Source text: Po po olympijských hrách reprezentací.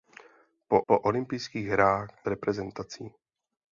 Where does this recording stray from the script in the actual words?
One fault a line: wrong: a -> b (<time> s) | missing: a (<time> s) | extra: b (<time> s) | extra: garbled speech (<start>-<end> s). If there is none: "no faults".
no faults